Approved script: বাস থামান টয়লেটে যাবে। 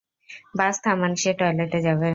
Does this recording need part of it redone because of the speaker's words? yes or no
yes